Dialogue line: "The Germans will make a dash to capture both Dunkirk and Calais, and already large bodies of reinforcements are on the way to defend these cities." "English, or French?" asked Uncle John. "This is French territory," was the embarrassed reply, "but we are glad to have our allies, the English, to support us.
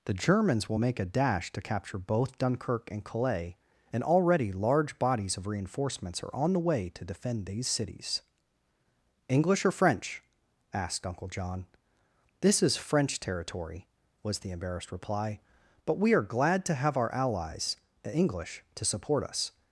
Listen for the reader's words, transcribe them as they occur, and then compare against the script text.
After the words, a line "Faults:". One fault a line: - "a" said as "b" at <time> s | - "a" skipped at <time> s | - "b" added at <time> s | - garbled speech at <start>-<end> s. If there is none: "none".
"The Germans will make a dash to capture both Dunkirk and Calais, and already large bodies of reinforcements are on the way to defend these cities." "English, or French?" asked Uncle John. "This is French territory," was the embarrassed reply, "but we are glad to have our allies, the English, to support us.
Faults:
none